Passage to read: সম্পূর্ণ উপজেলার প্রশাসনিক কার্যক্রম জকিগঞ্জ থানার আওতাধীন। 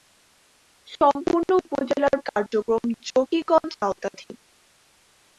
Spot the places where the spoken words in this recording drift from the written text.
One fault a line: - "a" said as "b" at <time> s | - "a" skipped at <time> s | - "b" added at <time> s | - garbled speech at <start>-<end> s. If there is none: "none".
- "প্রশাসনিক" skipped at 2.2 s
- "থানার" skipped at 3.7 s